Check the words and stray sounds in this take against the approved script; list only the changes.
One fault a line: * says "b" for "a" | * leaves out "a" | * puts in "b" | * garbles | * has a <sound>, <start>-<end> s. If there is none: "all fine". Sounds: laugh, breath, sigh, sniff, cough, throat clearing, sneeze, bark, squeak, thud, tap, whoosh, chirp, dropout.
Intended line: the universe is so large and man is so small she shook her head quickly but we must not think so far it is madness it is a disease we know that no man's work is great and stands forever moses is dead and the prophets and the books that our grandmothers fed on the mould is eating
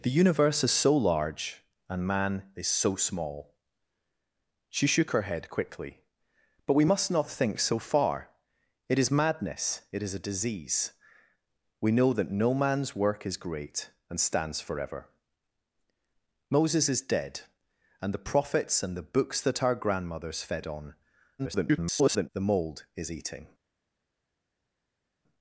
* garbles